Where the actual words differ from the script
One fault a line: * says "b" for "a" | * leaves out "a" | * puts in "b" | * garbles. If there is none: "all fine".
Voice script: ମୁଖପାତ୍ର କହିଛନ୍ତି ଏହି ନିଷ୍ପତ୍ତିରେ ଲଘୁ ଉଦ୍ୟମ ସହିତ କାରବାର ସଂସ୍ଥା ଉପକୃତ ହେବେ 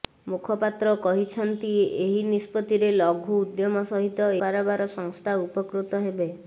all fine